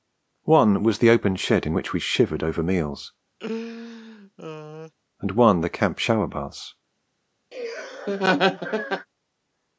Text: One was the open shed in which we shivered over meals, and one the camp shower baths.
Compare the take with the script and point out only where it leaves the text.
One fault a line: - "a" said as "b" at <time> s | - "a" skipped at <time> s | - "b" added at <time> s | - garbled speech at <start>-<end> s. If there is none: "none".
none